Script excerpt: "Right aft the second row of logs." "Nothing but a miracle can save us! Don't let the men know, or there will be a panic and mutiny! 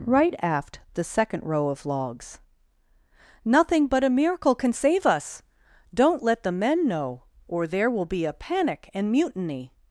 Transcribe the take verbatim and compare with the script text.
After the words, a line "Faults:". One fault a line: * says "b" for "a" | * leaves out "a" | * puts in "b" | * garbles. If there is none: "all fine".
"Right aft the second row of logs." "Nothing but a miracle can save us! Don't let the men know, or there will be a panic and mutiny!
Faults:
all fine